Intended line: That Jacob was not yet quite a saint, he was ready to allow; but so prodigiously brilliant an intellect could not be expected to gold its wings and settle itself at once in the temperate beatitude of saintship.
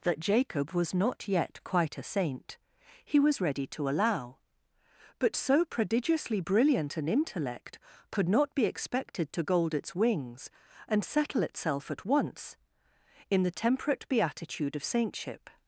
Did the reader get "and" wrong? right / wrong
right